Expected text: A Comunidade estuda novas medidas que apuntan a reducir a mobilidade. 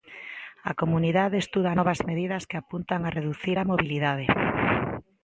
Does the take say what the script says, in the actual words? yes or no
yes